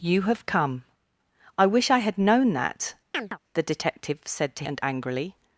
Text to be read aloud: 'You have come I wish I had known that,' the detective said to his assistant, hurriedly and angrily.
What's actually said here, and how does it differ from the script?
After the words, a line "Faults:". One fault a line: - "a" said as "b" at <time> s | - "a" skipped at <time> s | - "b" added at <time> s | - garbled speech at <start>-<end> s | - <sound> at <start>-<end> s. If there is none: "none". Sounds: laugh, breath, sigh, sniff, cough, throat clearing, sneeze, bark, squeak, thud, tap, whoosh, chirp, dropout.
'You have come I wish I had known that,' the detective said to and angrily.
Faults:
- chirp at 3.1-3.4 s
- "his assistant hurriedly" skipped at 4.6 s